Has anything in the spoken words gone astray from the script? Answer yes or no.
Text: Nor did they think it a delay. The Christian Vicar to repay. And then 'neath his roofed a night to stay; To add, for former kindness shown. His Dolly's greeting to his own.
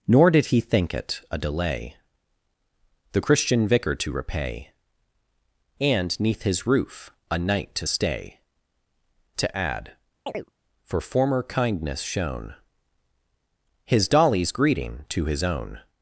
yes